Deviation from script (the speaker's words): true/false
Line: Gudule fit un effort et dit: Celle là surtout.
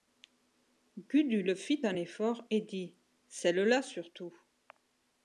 false